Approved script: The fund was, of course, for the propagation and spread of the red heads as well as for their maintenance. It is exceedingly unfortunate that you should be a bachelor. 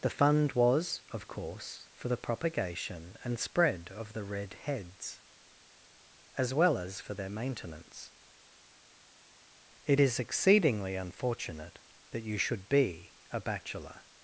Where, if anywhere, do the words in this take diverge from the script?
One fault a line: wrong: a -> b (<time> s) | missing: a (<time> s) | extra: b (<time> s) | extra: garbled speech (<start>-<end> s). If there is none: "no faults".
no faults